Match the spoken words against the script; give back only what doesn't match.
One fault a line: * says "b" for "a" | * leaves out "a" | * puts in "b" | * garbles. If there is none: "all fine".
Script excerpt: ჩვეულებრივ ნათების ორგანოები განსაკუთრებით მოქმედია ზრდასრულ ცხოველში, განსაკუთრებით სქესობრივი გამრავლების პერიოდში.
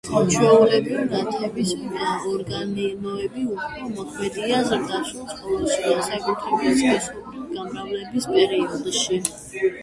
* says "უფრო" for "განსაკუთრებით"